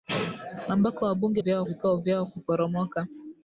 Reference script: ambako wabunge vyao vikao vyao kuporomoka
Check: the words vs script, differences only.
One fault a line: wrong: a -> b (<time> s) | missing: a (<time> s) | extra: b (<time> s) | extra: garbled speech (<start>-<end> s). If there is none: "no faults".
no faults